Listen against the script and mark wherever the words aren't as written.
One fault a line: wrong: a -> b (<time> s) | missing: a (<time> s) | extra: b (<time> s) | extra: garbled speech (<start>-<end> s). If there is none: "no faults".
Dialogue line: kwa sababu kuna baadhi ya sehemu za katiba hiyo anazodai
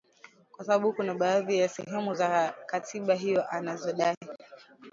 no faults